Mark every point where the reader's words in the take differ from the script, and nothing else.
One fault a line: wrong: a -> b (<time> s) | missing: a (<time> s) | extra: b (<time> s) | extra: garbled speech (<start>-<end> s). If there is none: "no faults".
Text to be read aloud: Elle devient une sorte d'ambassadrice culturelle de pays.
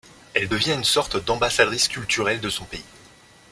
extra: son (2.5 s)